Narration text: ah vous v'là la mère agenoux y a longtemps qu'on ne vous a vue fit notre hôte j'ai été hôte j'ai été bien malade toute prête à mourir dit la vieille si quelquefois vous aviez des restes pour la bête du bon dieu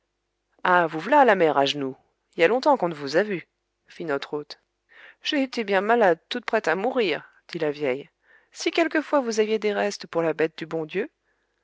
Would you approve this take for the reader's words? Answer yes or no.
no